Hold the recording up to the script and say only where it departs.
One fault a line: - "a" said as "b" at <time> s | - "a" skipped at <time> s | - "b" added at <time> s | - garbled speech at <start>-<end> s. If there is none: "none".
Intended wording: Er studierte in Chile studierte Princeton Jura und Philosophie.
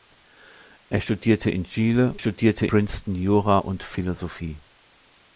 none